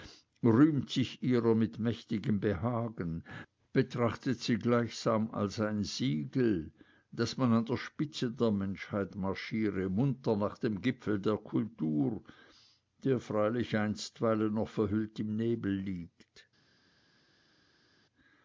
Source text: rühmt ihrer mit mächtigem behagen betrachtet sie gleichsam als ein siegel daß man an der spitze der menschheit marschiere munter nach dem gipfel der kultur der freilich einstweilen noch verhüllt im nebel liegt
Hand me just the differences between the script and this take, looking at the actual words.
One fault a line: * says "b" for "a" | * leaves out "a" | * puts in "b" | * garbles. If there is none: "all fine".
* puts in "sich"